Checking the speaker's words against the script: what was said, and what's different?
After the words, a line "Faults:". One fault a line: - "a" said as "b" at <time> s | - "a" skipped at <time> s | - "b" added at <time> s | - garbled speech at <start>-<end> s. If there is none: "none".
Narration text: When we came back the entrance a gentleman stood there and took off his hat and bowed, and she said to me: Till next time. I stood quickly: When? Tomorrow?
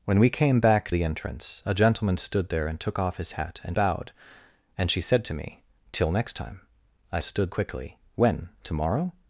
When we came back the entrance a gentleman stood there and took off his hat and bowed, and she said to me: Till next time. I stood quickly: When? Tomorrow?
Faults:
none